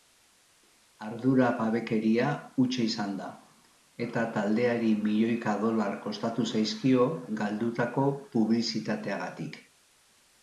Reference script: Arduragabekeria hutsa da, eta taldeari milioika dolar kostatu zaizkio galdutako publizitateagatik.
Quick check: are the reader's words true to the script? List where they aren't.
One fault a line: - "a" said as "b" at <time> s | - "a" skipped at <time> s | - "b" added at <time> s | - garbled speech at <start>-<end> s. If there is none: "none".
- "izan" added at 2.9 s